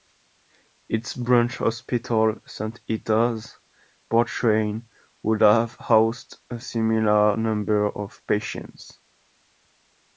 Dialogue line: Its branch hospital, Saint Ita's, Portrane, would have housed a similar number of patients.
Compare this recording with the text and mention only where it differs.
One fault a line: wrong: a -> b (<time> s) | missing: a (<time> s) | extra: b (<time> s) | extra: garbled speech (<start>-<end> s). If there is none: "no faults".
no faults